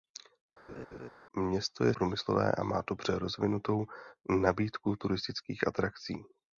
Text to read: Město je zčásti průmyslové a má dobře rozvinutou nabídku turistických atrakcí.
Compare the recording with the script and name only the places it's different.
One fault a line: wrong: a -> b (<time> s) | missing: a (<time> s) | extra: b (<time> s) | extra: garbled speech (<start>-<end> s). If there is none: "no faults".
missing: zčásti (1.9 s)